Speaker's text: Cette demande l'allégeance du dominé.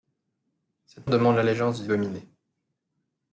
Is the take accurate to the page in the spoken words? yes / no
yes